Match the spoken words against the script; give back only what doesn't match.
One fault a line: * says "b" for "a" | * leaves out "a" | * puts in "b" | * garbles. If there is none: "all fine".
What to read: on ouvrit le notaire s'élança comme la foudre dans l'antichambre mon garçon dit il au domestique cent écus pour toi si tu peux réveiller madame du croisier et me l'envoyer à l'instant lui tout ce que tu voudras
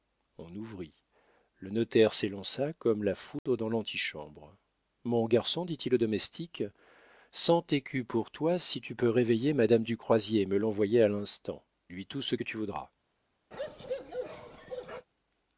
all fine